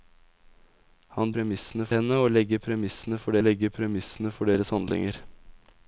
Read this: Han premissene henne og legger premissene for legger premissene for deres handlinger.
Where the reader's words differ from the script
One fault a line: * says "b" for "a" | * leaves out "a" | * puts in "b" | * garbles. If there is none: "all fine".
all fine